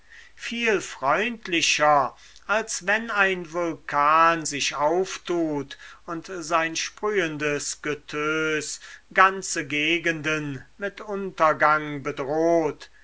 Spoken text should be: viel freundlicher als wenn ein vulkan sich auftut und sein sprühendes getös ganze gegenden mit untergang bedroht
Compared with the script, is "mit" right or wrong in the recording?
right